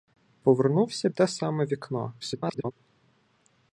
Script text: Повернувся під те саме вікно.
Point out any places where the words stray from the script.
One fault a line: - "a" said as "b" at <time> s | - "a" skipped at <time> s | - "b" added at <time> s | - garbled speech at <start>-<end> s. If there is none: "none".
- "під" skipped at 1.1 s
- garbled speech at 2.2-2.7 s